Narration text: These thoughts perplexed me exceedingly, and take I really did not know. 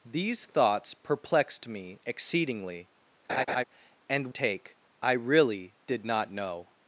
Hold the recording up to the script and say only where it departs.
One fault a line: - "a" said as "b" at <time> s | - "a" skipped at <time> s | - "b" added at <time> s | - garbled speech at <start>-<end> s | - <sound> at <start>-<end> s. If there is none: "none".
- laugh at 3.3-3.6 s